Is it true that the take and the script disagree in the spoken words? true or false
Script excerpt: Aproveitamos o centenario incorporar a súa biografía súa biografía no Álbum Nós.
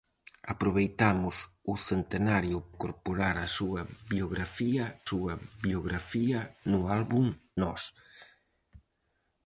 false